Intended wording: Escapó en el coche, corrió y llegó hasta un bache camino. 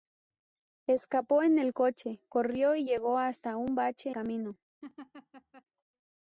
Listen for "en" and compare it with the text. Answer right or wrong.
right